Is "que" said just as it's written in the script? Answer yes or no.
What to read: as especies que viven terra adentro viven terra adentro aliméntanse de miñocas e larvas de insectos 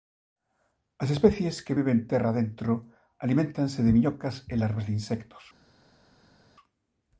yes